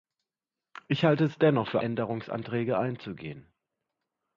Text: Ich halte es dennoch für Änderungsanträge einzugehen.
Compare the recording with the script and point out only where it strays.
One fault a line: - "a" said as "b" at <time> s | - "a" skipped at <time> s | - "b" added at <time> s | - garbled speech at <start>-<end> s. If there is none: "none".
none